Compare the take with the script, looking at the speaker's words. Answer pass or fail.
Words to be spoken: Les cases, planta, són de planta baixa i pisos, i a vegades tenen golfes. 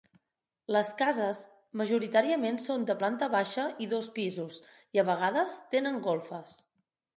fail